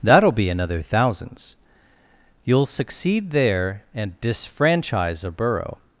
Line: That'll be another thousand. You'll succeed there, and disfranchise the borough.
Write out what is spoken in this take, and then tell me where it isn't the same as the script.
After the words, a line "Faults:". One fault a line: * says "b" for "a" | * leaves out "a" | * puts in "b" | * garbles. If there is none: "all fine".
That'll be another thousands. You'll succeed there, and disfranchise a borough.
Faults:
* says "thousands" for "thousand"
* says "a" for "the"